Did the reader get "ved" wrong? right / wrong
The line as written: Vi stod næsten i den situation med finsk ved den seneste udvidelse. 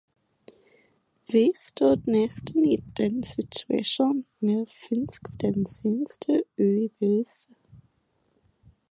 wrong